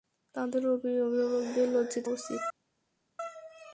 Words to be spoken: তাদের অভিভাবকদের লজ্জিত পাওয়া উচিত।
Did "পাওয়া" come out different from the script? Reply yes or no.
yes